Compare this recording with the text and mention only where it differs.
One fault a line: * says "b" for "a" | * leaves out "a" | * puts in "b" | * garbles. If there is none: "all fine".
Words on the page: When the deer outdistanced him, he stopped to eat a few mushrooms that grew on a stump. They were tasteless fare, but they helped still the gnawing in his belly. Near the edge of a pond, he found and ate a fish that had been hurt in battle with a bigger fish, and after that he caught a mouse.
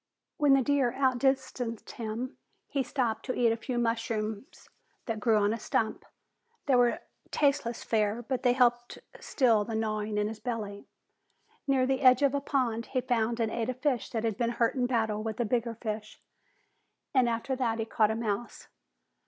all fine